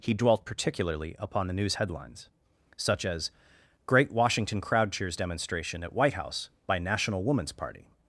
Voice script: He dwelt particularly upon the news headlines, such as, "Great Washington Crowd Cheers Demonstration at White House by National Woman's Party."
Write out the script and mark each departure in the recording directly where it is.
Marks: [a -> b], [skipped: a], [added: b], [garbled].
He dwelt particularly upon the news headlines, such as, "Great Washington Crowd Cheers Demonstration at White House by National Woman's Party."